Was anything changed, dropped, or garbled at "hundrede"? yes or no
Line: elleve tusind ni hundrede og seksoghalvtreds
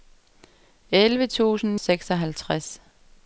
yes